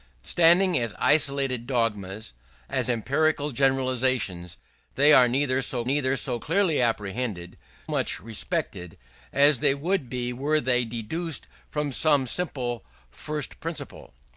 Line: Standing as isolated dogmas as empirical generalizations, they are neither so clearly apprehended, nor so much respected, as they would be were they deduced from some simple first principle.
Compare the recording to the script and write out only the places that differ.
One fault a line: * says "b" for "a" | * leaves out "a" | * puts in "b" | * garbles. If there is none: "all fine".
* puts in "neither so"
* leaves out "nor so"